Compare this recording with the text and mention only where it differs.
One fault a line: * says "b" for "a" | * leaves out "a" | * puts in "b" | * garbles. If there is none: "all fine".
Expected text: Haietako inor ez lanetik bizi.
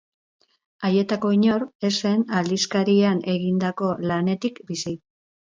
* puts in "zen aldizkarian egindako"